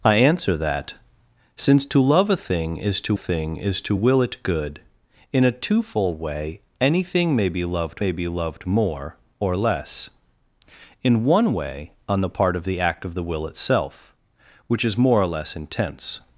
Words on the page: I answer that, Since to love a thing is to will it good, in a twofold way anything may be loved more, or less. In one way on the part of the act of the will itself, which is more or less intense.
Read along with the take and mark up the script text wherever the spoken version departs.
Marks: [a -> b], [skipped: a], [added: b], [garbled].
I answer that, Since to love a thing is to [added: thing is to] will it good, in a twofold way anything may be loved [added: may be loved] more, or less. In one way on the part of the act of the will itself, which is more or less intense.